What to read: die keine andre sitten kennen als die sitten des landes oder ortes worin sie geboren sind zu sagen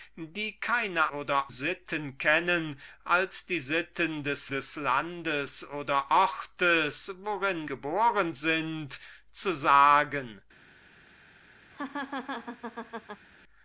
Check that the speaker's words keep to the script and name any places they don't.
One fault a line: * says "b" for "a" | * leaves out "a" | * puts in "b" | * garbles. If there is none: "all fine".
* says "oder" for "andre"
* puts in "des"
* leaves out "sie"